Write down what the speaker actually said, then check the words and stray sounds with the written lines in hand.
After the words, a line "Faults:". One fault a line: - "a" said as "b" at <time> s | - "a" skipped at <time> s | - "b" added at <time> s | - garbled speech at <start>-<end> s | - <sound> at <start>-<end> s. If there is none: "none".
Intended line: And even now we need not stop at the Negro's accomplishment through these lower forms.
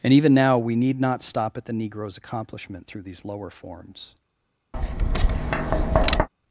And even now we need not stop at the Negro's accomplishment through these lower forms.
Faults:
- tap at 4.7-6.3 s